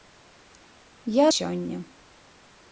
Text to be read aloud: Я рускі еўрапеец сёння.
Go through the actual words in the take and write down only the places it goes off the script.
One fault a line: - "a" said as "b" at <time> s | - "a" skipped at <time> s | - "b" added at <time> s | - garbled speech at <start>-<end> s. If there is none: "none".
- "рускі еўрапеец" skipped at 1.2 s